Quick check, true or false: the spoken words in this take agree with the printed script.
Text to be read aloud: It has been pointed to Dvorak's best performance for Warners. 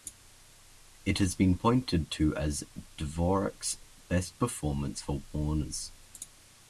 false